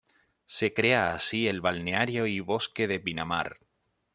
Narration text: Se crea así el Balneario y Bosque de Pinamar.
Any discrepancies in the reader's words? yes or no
no